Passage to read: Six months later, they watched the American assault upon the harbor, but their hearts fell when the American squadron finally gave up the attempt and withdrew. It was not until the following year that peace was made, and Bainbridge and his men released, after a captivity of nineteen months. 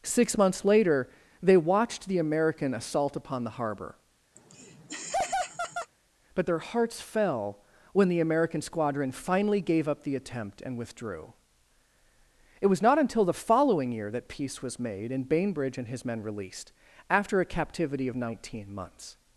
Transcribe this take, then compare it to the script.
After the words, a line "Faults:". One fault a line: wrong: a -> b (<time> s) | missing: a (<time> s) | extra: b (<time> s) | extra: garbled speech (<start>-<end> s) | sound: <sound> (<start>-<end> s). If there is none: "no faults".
Six months later, they watched the American assault upon the harbor, but their hearts fell when the American squadron finally gave up the attempt and withdrew. It was not until the following year that peace was made, and Bainbridge and his men released, after a captivity of nineteen months.
Faults:
sound: laugh (4.4-5.9 s)